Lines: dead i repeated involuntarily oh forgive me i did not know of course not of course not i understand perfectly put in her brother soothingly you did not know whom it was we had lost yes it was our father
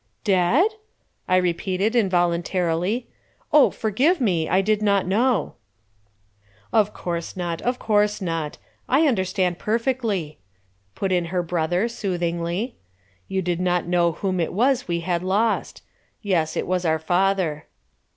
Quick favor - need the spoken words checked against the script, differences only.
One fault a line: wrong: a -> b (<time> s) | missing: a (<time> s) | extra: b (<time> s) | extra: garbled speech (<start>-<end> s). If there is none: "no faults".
no faults